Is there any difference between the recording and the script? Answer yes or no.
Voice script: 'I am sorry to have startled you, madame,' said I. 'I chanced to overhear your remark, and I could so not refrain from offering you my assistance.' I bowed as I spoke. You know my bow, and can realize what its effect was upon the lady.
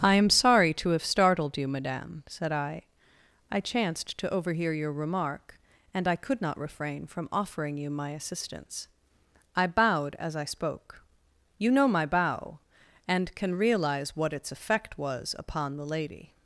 yes